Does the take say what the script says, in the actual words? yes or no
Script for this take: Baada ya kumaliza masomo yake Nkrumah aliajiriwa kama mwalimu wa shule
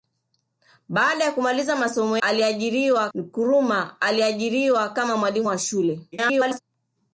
no